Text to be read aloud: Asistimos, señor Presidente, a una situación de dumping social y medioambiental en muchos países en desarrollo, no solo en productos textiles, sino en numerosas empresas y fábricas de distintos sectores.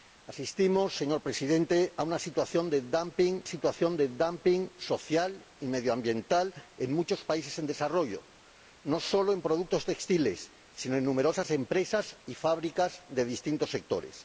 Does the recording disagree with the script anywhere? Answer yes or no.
yes